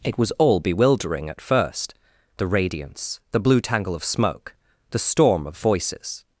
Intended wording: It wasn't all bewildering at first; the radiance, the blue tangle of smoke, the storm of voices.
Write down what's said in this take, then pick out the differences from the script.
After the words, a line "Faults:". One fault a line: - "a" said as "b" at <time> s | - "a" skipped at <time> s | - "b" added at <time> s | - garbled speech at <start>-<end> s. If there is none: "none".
It was all bewildering at first; the radiance, the blue tangle of smoke, the storm of voices.
Faults:
- "wasn't" said as "was" at 0.2 s